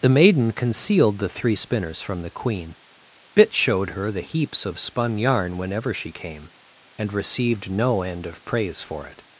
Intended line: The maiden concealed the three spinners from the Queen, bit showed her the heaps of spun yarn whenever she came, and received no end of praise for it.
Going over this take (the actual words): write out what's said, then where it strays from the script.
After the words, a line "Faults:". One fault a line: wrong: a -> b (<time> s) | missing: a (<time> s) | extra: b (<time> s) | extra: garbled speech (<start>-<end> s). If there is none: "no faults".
The maiden concealed the three spinners from the Queen, bit showed her the heaps of spun yarn whenever she came, and received no end of praise for it.
Faults:
no faults